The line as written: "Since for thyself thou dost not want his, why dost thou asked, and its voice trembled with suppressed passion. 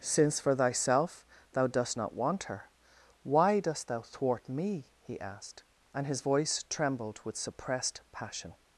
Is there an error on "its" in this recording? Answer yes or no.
yes